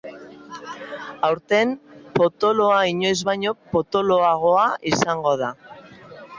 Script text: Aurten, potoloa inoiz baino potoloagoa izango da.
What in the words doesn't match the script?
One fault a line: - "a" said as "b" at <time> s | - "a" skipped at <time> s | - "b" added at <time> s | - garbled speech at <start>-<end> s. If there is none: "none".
none